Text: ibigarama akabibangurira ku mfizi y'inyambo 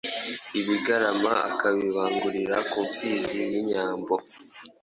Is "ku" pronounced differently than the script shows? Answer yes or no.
no